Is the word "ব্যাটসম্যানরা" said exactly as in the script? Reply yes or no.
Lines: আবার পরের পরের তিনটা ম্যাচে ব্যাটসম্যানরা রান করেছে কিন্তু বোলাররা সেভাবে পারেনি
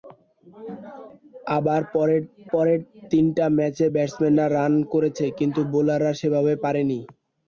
yes